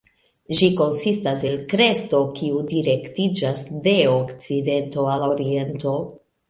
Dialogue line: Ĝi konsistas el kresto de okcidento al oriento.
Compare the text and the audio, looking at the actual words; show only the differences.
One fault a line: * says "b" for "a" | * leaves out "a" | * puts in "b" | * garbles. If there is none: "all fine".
* puts in "kiu direktiĝas"